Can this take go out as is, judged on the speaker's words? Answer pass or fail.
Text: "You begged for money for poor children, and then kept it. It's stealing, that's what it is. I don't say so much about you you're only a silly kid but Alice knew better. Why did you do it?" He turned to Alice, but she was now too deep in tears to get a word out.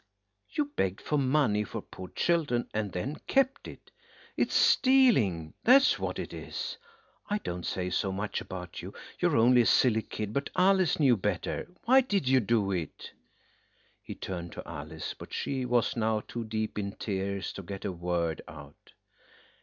pass